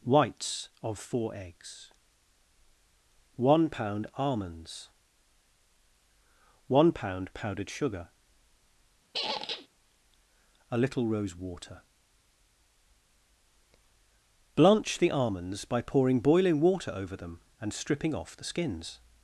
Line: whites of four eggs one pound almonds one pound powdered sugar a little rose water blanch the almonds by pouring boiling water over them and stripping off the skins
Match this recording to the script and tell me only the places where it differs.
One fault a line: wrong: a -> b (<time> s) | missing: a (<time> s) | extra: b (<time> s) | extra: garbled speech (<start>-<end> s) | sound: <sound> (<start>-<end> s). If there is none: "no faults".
sound: squeak (9.1-9.7 s)